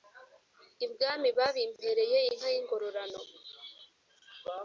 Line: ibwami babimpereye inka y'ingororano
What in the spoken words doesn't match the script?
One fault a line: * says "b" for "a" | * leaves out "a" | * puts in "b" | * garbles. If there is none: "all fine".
all fine